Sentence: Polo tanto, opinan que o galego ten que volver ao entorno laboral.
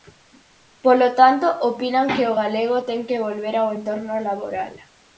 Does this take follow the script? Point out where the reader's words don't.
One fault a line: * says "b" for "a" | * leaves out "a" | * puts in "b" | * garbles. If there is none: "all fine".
all fine